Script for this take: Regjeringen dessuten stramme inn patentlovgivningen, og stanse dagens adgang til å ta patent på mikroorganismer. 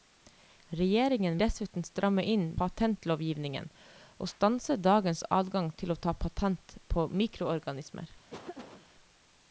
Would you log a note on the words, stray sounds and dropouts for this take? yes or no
yes